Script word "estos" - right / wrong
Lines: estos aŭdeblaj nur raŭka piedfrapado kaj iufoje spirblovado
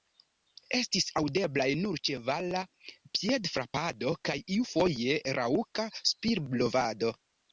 wrong